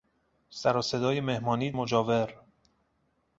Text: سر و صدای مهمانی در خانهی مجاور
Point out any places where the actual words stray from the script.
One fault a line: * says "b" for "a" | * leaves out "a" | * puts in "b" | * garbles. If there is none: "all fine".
* leaves out "در خانهی"